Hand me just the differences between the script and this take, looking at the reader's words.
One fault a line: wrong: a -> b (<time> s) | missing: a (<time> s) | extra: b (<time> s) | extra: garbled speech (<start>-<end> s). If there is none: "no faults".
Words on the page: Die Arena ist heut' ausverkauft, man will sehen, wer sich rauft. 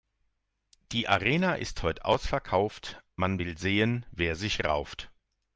no faults